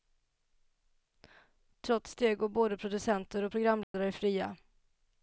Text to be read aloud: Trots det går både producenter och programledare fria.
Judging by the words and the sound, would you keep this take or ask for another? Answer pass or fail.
fail